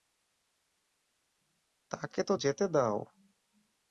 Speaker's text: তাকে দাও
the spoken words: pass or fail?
fail